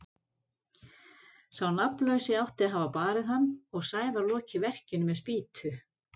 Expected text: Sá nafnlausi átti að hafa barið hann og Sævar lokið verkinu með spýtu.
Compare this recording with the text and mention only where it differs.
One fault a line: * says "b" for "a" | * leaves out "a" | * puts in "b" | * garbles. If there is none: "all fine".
all fine